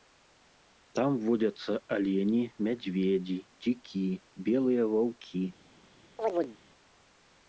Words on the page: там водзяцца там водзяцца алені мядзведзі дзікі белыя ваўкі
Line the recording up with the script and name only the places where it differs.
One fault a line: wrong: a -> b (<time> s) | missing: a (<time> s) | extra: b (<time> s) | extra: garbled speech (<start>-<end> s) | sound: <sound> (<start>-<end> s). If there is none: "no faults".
missing: там водзяцца (1.8 s)
sound: chirp (6.2-6.6 s)